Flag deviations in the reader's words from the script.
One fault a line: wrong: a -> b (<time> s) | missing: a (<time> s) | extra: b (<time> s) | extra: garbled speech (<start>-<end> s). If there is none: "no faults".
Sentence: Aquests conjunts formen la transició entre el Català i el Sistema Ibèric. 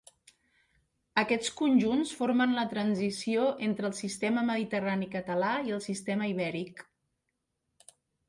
extra: Sistema Mediterrani (4.0 s)